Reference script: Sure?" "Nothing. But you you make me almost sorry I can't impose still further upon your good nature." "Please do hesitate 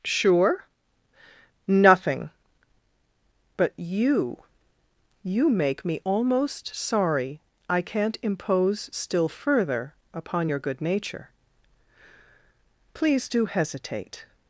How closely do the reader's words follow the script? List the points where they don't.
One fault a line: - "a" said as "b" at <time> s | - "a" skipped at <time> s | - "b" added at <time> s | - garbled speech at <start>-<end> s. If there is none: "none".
none